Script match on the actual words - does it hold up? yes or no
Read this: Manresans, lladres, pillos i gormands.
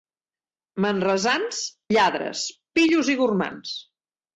yes